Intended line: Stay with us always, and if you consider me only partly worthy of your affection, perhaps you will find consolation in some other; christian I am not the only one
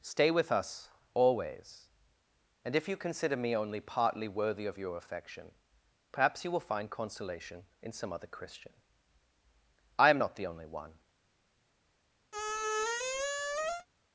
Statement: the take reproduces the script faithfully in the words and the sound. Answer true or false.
false